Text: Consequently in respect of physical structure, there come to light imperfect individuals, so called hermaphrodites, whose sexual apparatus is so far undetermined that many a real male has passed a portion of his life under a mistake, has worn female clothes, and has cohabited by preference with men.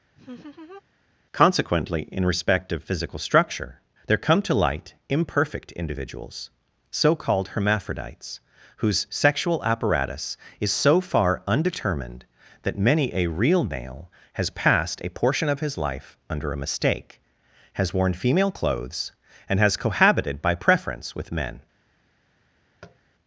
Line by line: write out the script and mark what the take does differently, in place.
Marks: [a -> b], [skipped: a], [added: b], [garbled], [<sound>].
[laugh] Consequently in respect of physical structure, there come to light imperfect individuals, so called hermaphrodites, whose sexual apparatus is so far undetermined that many a real male has passed a portion of his life under a mistake, has worn female clothes, and has cohabited by preference with men. [tap]